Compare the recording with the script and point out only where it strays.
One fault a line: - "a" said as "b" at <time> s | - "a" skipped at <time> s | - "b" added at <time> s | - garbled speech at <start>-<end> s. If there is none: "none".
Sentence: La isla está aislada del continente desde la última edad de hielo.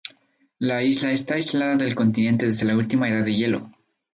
none